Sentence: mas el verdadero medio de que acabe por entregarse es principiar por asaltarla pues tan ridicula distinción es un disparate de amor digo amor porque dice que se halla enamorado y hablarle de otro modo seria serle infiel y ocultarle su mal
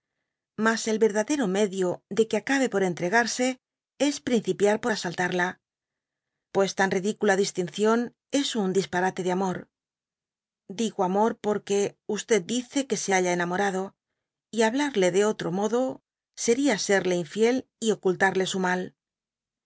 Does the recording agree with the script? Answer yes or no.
yes